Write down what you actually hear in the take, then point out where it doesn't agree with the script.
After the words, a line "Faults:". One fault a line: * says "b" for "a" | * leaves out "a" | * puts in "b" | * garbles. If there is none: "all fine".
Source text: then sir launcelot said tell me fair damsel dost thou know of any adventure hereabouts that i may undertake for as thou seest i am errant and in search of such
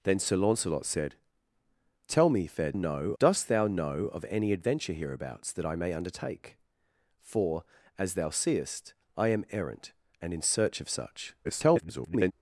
then sir launcelot said tell me fair know dost thou know of any adventure hereabouts that i may undertake for as thou seest i am errant and in search of such [garbled]
Faults:
* says "know" for "damsel"
* garbles